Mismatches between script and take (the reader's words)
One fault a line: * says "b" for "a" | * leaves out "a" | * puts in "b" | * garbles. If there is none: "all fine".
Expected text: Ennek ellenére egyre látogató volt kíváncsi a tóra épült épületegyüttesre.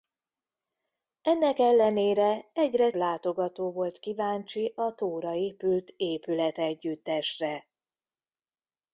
all fine